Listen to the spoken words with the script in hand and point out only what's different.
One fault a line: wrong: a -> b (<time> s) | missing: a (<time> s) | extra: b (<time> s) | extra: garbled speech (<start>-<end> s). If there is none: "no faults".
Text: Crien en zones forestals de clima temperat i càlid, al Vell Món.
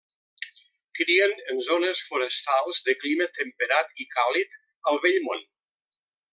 no faults